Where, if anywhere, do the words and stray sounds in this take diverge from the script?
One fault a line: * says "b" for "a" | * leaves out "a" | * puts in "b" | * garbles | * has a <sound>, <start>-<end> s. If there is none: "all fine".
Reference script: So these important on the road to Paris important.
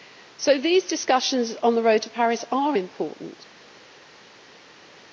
* says "discussions" for "important"
* puts in "are"